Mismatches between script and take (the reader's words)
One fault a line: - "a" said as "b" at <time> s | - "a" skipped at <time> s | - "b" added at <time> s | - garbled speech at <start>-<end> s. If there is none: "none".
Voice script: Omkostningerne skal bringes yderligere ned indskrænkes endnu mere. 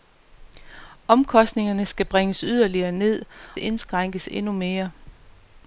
none